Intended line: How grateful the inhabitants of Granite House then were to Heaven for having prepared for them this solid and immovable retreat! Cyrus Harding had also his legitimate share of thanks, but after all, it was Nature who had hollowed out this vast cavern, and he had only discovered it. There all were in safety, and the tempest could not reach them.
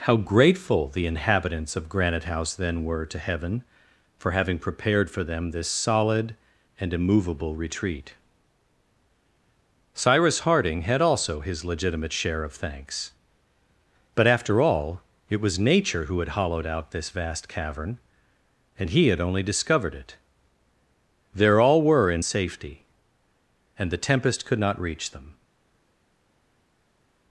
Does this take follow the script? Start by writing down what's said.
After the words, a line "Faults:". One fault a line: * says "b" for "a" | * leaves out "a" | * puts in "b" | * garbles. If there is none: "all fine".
How grateful the inhabitants of Granite House then were to Heaven for having prepared for them this solid and immovable retreat! Cyrus Harding had also his legitimate share of thanks, but after all, it was Nature who had hollowed out this vast cavern, and he had only discovered it. There all were in safety, and the tempest could not reach them.
Faults:
all fine